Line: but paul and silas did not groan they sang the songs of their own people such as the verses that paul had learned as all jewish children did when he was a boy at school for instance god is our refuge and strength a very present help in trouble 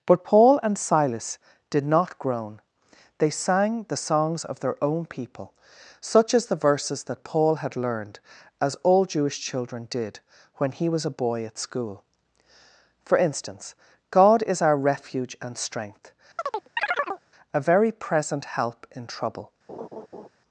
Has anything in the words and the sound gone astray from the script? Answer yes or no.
yes